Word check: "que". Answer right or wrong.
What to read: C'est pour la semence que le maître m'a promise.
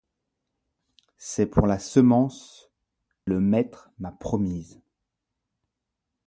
wrong